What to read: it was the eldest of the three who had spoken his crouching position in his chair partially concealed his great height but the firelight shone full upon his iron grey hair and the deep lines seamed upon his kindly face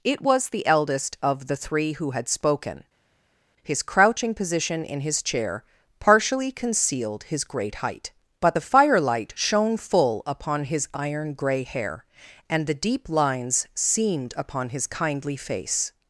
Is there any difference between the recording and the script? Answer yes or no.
no